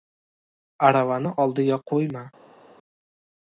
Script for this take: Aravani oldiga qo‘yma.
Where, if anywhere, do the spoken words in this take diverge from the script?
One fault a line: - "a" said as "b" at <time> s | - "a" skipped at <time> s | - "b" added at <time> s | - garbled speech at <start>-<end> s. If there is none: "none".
none